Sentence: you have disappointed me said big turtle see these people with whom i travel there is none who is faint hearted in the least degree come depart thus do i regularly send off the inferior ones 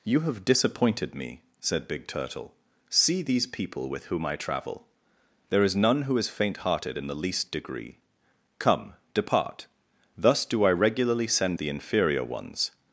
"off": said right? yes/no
no